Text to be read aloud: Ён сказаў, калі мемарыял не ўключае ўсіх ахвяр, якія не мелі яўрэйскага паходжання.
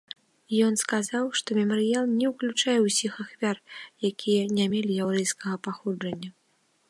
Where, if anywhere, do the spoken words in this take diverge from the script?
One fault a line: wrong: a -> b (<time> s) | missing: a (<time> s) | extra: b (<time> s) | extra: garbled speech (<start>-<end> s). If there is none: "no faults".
wrong: калі -> што (1.4 s)